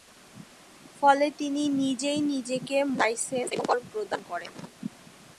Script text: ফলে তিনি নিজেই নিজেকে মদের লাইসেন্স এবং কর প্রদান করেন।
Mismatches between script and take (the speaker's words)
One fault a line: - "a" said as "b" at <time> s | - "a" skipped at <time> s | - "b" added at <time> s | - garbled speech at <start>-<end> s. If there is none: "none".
- "মদের" skipped at 2.8 s